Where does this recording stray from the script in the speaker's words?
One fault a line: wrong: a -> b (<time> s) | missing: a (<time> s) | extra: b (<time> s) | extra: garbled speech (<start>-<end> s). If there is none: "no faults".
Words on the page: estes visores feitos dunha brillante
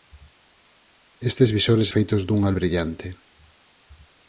no faults